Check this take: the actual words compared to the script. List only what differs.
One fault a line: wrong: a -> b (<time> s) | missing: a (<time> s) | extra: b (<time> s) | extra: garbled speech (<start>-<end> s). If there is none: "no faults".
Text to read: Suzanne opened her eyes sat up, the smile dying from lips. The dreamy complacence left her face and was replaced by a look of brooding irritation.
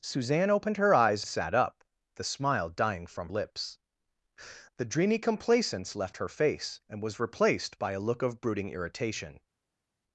no faults